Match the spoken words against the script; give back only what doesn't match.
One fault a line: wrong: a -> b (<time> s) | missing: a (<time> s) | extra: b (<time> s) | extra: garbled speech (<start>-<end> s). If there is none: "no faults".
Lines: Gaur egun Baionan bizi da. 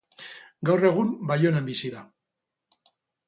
no faults